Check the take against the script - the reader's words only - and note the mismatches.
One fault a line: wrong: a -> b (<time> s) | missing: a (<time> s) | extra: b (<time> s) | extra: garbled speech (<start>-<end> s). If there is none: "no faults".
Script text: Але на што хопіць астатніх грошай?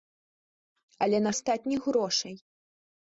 missing: што хопіць (1.3 s)